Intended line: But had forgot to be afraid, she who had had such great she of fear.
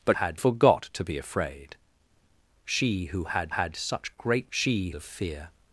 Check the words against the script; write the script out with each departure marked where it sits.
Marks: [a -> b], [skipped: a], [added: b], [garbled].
But had forgot to be afraid, she who had had such great she of fear.